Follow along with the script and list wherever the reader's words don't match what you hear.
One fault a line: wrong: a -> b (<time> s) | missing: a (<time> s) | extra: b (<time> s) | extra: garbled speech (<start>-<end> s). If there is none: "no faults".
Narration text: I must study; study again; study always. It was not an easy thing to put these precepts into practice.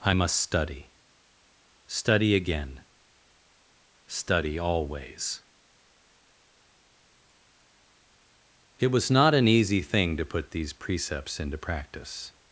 no faults